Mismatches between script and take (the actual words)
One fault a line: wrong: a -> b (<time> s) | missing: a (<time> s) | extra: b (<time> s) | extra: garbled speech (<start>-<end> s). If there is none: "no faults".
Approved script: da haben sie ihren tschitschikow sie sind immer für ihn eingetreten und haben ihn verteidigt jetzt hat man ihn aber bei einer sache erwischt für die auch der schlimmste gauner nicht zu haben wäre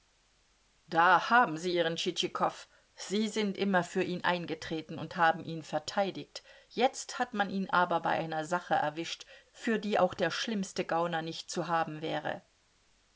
no faults